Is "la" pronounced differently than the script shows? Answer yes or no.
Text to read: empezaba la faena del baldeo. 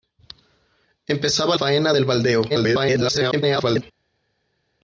yes